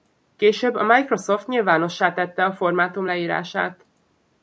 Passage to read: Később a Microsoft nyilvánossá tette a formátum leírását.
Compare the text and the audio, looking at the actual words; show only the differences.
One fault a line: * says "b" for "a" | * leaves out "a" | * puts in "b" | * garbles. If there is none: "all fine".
all fine